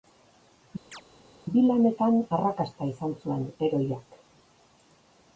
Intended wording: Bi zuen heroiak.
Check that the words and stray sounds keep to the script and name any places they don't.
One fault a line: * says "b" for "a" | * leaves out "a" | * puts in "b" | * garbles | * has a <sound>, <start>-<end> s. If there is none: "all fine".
* has a chirp, 0.9-1.0 s
* puts in "lanetan arrakasta izan"